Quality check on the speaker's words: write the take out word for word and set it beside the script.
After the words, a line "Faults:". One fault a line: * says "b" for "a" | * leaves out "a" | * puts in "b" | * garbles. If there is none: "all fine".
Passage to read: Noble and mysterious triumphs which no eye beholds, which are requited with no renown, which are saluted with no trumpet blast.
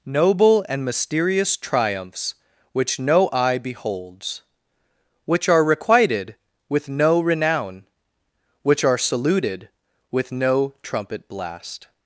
Noble and mysterious triumphs which no eye beholds, which are requited with no renown, which are saluted with no trumpet blast.
Faults:
all fine